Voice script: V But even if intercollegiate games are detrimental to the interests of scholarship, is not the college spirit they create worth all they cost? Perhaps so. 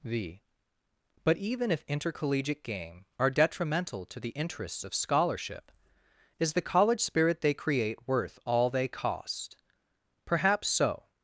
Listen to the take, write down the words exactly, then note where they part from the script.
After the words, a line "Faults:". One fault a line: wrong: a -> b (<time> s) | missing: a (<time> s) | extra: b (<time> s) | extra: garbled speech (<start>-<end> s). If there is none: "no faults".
V But even if intercollegiate game are detrimental to the interests of scholarship, is the college spirit they create worth all they cost? Perhaps so.
Faults:
wrong: games -> game (2.6 s)
missing: not (6.5 s)